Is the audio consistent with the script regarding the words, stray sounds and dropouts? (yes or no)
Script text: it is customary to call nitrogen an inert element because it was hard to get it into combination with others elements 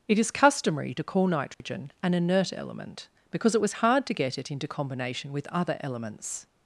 no